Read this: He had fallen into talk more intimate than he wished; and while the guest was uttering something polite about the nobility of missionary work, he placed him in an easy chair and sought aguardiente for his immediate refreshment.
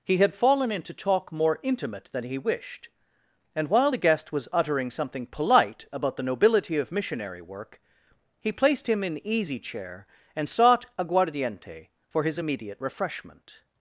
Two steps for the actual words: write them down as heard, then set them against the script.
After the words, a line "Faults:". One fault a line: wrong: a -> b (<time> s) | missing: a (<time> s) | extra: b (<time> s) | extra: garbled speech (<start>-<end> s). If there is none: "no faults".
He had fallen into talk more intimate than he wished; and while the guest was uttering something polite about the nobility of missionary work, he placed him in easy chair and sought aguardiente for his immediate refreshment.
Faults:
missing: an (9.2 s)